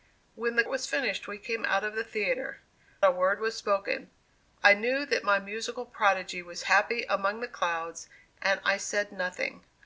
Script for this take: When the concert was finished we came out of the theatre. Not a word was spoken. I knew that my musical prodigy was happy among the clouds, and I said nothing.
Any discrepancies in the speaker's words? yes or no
yes